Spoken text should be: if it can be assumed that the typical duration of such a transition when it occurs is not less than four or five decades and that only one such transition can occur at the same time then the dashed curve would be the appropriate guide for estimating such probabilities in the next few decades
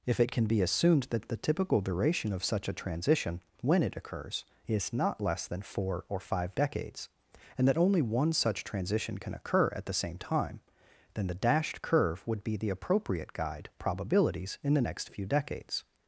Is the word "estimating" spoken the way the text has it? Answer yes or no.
no